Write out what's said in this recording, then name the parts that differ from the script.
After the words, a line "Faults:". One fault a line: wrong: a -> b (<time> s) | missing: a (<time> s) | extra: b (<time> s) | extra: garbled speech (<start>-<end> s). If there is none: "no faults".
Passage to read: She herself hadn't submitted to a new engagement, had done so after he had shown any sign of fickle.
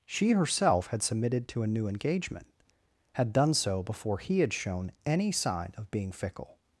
She herself had submitted to a new engagement, had done so before he had shown any sign of being fickle.
Faults:
wrong: hadn't -> had (0.9 s)
wrong: after -> before (3.8 s)
extra: being (5.9 s)